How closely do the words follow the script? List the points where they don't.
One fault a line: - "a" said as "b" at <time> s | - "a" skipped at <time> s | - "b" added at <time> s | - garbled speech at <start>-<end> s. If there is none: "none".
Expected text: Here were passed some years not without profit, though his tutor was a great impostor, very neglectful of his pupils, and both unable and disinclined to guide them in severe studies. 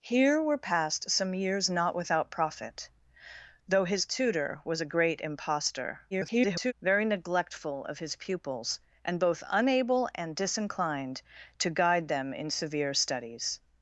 - garbled speech at 6.1-6.7 s